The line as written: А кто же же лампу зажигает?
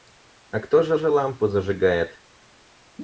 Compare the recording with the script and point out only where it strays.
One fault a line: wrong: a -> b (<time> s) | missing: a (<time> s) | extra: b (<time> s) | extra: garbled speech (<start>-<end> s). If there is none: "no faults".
no faults